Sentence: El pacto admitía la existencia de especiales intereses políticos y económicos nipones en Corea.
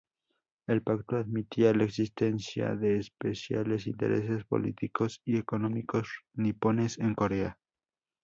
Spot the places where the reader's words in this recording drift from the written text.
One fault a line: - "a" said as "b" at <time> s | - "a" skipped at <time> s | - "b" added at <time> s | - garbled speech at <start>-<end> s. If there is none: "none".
none